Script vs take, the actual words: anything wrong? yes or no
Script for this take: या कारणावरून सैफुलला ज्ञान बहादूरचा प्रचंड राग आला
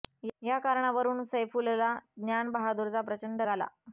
yes